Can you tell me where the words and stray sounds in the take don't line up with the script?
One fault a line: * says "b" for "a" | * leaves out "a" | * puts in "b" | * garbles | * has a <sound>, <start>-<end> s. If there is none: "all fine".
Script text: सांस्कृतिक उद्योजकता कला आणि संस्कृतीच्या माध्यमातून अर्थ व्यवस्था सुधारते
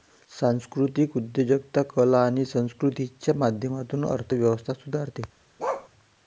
* has a bark, 5.6-5.9 s